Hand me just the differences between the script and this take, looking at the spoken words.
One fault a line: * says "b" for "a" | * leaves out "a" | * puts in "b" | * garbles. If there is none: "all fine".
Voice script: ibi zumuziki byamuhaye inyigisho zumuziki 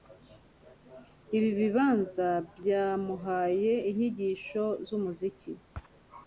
* says "bibanza" for "zumuziki"